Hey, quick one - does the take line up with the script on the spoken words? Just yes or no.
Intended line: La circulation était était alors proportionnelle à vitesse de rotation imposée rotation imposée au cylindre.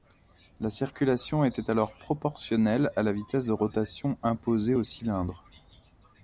no